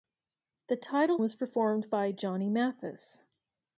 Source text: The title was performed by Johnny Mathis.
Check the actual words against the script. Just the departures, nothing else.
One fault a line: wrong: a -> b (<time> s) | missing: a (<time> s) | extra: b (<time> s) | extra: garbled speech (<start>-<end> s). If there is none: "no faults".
no faults